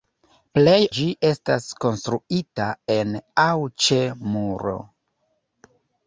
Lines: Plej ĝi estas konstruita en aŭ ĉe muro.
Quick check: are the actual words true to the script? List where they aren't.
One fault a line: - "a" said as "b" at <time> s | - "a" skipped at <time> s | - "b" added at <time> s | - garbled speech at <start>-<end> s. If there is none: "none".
none